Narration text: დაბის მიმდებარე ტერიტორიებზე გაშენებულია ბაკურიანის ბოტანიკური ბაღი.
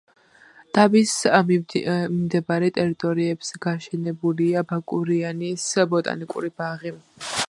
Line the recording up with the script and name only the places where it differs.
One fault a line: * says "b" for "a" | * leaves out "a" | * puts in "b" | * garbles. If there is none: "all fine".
all fine